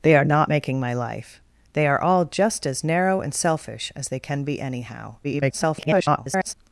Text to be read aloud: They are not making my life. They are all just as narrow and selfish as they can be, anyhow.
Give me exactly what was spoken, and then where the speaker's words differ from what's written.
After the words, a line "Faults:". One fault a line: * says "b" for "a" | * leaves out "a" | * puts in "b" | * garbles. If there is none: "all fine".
They are not making my life. They are all just as narrow and selfish as they can be, anyhow. [garbled]
Faults:
* garbles